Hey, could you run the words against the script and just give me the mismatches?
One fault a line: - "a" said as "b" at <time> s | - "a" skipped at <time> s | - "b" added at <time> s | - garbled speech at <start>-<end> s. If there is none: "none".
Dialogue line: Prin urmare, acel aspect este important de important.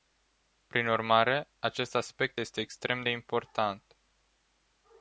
- "acel" said as "acest" at 1.6 s
- "important" said as "extrem" at 2.6 s